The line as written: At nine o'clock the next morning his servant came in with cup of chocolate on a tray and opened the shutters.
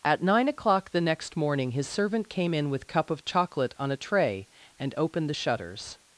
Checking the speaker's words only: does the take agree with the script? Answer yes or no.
yes